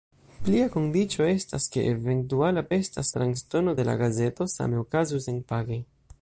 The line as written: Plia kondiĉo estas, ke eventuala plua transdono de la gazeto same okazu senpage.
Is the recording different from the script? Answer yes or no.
yes